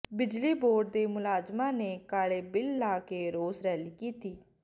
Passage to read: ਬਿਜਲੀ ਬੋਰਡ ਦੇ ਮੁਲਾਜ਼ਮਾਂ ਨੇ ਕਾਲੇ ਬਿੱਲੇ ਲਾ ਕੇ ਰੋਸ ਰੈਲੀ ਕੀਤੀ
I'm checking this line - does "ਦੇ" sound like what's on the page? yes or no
yes